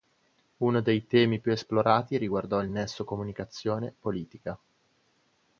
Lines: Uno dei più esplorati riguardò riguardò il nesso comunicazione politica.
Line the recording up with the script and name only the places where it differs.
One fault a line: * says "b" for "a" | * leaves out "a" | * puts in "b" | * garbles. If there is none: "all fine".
* puts in "temi"
* leaves out "riguardò"